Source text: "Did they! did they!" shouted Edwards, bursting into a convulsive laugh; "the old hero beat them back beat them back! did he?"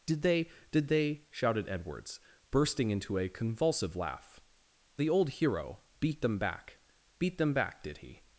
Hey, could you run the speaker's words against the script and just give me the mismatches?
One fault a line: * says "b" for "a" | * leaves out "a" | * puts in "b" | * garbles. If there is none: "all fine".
all fine